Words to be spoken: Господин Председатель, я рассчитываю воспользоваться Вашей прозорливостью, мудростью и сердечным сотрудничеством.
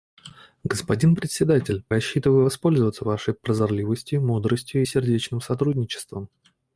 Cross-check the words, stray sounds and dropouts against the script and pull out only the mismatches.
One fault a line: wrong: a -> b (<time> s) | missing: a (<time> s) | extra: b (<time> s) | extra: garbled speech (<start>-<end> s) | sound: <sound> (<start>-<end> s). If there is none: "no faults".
missing: я (1.9 s)